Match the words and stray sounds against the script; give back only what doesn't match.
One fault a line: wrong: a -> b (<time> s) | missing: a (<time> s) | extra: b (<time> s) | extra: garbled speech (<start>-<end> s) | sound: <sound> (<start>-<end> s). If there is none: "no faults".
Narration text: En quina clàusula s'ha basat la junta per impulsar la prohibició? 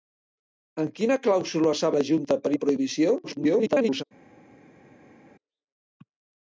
missing: basat (1.9 s)
missing: impulsar (2.5 s)
extra: garbled speech (3.2-4.0 s)